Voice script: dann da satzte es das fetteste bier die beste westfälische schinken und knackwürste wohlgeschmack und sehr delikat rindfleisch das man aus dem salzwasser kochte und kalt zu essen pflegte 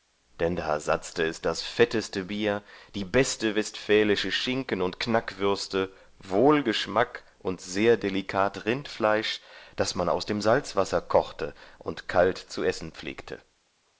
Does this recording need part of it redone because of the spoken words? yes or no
no